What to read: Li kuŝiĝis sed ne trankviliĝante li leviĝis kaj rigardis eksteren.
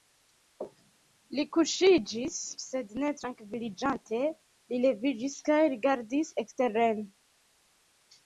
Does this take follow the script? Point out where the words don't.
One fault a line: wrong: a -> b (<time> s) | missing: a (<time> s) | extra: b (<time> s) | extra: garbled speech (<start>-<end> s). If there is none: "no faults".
no faults